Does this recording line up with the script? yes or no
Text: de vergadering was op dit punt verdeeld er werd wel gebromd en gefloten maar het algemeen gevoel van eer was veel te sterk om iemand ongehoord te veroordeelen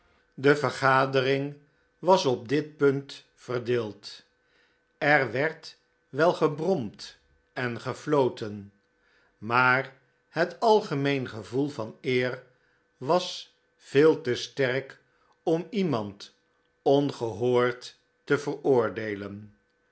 yes